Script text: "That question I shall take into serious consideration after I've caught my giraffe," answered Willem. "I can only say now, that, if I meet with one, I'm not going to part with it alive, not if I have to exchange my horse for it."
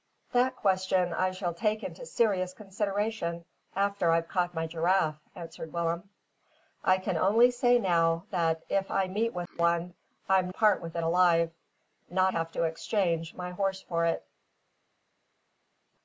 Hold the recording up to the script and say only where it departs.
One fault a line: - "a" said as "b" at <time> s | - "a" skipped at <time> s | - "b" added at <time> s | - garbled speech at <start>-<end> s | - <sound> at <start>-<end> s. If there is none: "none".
- "not going to" skipped at 10.5 s
- "if I" skipped at 12.3 s